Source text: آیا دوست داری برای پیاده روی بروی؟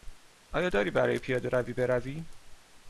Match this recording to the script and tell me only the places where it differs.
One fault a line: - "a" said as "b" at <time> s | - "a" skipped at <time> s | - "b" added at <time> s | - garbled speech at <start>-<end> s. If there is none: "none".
- "دوست" skipped at 0.7 s